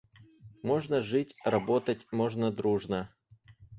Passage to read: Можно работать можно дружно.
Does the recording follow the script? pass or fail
fail